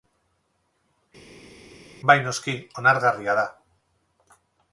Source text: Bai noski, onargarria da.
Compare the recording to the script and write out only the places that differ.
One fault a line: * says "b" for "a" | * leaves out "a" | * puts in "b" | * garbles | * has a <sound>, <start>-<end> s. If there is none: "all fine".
all fine